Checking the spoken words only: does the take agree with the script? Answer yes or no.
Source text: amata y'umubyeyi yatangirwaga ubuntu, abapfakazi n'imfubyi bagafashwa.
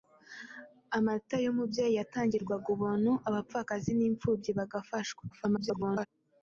no